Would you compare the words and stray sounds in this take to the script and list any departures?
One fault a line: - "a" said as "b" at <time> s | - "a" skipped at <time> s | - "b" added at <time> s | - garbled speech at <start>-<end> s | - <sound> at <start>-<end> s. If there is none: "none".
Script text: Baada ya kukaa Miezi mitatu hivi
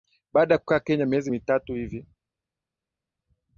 - "Kenya" added at 0.8 s